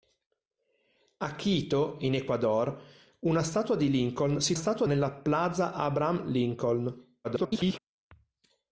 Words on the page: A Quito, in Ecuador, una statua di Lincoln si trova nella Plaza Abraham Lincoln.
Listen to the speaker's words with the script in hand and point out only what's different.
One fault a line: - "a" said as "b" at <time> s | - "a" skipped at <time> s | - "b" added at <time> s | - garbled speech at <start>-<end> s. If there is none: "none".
- "trova" said as "statua" at 4.5 s
- garbled speech at 7.2-7.8 s